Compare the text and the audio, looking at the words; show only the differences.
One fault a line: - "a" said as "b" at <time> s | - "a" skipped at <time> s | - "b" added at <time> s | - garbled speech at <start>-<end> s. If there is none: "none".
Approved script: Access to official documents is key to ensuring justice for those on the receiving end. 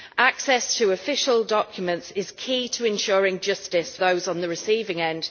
- "for" skipped at 4.0 s